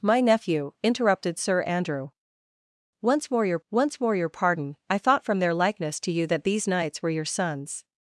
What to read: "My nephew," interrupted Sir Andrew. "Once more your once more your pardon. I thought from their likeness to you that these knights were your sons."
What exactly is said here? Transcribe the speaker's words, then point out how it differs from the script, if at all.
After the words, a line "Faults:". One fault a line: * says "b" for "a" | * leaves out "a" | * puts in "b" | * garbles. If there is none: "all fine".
"My nephew," interrupted Sir Andrew. "Once more your once more your pardon. I thought from their likeness to you that these knights were your sons."
Faults:
all fine